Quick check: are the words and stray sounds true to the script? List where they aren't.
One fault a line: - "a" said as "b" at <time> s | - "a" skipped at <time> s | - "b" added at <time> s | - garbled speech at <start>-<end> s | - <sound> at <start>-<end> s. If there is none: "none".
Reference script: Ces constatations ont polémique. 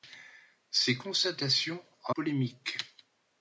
none